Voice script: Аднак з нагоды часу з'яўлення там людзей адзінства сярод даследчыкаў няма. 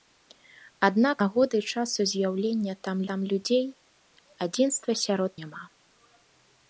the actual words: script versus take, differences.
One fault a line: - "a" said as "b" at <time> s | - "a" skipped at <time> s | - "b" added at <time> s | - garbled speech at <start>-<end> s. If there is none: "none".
- "з" skipped at 1.2 s
- "там" added at 3.1 s
- "даследчыкаў" skipped at 5.3 s